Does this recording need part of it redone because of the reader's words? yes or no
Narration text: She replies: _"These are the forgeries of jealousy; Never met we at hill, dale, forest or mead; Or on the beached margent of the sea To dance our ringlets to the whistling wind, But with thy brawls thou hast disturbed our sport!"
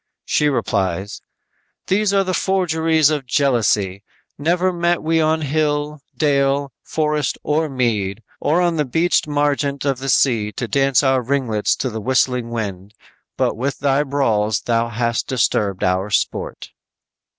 yes